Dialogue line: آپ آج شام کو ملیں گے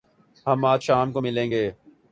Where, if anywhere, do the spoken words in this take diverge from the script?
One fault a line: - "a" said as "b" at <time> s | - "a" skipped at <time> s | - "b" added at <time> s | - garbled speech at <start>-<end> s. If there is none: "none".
- "آپ" said as "ہم" at 0.5 s